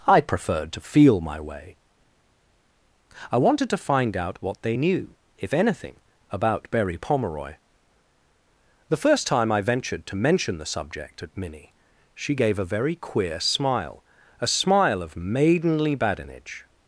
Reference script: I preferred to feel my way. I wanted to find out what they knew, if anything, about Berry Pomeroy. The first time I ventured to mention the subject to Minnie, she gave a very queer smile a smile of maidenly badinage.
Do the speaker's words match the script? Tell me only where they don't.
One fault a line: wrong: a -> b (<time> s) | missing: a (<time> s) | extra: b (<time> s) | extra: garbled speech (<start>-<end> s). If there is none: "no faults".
wrong: to -> at (11.2 s)